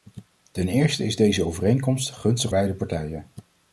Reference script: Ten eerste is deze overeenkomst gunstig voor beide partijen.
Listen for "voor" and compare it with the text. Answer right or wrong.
wrong